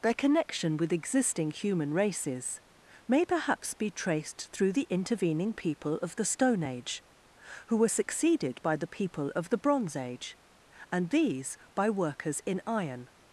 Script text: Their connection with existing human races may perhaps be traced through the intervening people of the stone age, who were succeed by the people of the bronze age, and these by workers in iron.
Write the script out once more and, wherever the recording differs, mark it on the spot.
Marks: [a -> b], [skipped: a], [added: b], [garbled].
Their connection with existing human races may perhaps be traced through the intervening people of the stone age, who were [succeed -> succeeded] by the people of the bronze age, and these by workers in iron.